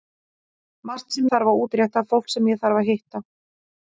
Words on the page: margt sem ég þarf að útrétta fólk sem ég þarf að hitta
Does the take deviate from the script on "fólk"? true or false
false